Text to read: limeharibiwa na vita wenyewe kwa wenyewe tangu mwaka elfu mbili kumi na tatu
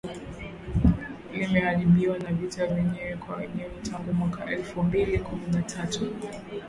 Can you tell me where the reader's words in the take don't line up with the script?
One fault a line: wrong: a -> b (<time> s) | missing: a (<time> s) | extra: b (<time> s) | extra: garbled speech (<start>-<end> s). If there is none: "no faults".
no faults